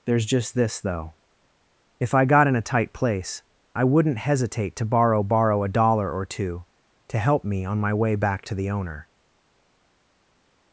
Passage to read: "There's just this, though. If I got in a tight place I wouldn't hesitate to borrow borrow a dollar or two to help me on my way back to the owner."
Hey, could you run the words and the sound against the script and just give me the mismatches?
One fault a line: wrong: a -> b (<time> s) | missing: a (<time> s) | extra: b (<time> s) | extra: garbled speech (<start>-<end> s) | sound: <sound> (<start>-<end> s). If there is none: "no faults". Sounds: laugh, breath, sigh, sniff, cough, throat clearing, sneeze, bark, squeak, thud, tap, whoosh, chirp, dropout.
no faults